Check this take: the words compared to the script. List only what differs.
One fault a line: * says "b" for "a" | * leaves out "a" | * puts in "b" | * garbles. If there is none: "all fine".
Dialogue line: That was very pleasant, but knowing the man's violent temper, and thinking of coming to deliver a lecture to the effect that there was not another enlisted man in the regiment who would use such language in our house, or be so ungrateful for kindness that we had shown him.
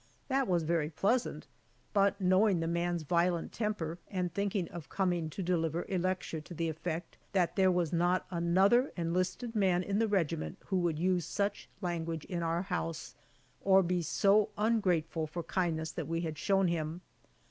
all fine